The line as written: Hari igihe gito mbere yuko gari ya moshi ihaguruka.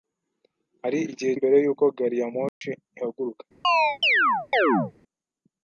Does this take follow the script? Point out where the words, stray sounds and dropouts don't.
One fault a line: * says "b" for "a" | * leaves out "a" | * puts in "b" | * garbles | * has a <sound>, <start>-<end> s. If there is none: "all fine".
* leaves out "gito"
* has a dropout, 2.5-2.6 s
* has a chirp, 3.6-4.9 s